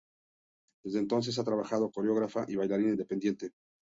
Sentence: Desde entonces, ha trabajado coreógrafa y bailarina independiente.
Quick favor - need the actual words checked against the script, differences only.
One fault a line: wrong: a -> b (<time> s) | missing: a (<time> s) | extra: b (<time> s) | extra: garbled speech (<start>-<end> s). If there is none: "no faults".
no faults